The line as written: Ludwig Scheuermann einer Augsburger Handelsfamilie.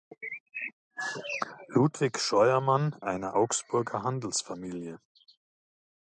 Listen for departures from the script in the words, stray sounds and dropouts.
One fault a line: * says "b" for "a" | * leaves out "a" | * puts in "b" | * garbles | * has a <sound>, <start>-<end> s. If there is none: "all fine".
all fine